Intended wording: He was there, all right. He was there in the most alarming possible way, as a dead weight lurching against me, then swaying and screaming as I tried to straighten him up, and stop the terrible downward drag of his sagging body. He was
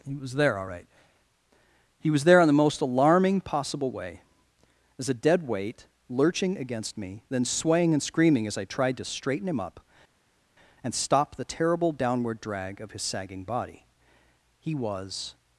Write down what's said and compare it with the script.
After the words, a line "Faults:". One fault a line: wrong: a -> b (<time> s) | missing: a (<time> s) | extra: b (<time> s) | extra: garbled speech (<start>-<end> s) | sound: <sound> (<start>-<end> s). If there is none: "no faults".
He was there, all right. He was there in the most alarming possible way, as a dead weight lurching against me, then swaying and screaming as I tried to straighten him up, and stop the terrible downward drag of his sagging body. He was
Faults:
no faults